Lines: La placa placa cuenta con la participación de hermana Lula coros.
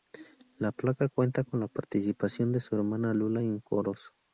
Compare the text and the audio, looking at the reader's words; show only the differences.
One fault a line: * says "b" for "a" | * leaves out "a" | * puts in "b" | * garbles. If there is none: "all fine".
* leaves out "placa"
* puts in "su"
* puts in "en"